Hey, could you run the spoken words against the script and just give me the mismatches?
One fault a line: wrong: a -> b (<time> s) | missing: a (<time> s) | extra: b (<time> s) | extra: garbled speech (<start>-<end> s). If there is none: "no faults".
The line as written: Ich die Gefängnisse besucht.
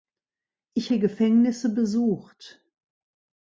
no faults